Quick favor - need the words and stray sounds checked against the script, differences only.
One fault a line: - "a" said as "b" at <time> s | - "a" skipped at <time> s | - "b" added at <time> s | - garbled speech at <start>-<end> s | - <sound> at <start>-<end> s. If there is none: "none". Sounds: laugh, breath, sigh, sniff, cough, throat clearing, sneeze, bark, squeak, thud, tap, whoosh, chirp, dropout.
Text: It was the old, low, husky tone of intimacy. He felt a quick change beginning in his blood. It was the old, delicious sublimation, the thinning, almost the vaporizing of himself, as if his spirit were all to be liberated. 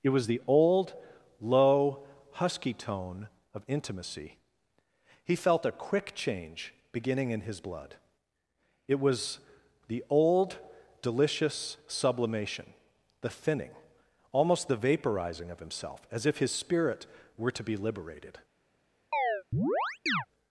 - "all" skipped at 17.5 s
- chirp at 19.1-20.3 s